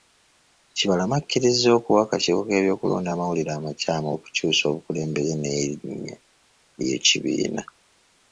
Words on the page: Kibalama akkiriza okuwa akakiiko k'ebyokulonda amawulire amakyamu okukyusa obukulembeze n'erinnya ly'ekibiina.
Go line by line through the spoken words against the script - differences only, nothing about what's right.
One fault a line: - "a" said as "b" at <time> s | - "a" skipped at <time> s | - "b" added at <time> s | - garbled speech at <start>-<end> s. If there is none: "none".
none